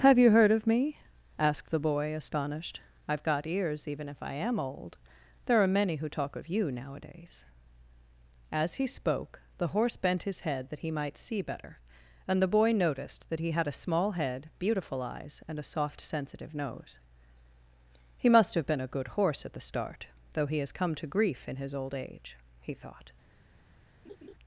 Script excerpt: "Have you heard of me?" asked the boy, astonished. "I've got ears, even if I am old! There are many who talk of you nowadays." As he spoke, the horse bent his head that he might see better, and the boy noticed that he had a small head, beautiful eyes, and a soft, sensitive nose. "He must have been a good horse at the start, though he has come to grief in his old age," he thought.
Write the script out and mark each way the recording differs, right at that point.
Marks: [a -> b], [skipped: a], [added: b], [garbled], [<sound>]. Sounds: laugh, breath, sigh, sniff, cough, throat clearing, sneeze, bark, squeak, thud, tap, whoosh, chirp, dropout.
"Have you heard of me?" asked the boy, astonished. "I've got ears, even if I am old! There are many who talk of you nowadays." As he spoke, the horse bent his head that he might see better, and the boy noticed that he had a small head, beautiful eyes, and a soft, sensitive nose. "He must have been a good horse at the start, though he has come to grief in his old age," he thought. [laugh]